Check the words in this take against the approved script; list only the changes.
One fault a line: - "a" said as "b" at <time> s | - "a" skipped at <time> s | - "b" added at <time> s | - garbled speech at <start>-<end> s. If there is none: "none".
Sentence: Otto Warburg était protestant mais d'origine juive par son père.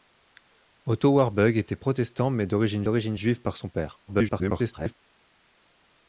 - "d'origine" added at 2.8 s
- garbled speech at 4.1-4.9 s